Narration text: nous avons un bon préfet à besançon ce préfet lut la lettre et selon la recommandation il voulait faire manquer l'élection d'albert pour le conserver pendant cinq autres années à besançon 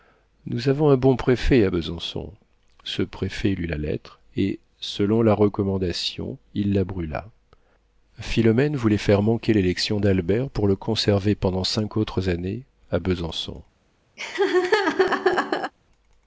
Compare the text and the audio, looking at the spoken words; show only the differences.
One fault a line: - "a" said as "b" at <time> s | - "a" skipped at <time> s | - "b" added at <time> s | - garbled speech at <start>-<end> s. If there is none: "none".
- "la brûla philomène" added at 6.7 s